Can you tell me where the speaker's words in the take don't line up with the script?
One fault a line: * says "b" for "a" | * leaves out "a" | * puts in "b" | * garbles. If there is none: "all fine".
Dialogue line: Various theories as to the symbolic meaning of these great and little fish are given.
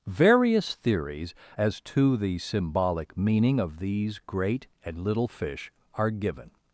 all fine